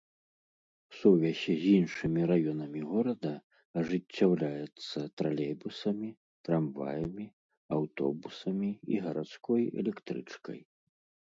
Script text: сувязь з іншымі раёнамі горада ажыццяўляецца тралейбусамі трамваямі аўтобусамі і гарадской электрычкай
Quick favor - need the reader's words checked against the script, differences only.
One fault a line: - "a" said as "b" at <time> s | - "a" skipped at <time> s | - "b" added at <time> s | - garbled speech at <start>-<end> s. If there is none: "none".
none